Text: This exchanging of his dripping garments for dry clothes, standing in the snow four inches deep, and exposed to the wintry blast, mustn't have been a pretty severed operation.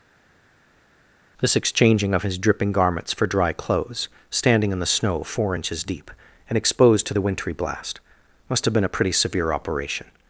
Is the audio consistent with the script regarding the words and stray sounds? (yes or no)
no